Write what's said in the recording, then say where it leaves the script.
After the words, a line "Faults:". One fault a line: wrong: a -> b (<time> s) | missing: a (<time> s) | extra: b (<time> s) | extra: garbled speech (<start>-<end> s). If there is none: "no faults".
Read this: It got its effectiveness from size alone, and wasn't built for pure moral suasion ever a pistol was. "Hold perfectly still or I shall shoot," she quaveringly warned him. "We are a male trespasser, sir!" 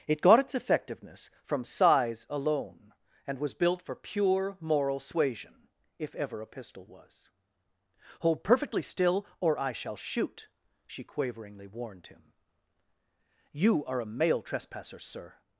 It got its effectiveness from size alone, and was built for pure moral suasion if ever a pistol was. "Hold perfectly still or I shall shoot," she quaveringly warned him. "You are a male trespasser, sir!"
Faults:
wrong: wasn't -> was (3.4 s)
extra: if (6.0 s)
wrong: We -> You (13.5 s)